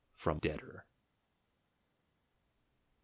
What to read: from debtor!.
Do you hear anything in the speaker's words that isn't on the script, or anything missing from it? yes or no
no